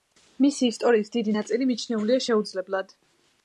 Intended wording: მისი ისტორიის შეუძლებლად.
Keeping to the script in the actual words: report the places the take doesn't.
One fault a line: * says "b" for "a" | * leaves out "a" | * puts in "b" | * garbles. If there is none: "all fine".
* puts in "დიდი ნაწილი მიჩნეულია"